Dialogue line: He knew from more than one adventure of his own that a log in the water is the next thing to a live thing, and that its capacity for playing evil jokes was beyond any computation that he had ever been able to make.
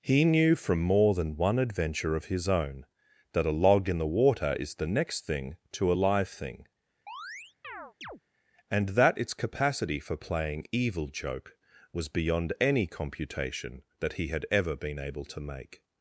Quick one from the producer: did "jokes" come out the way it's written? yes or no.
no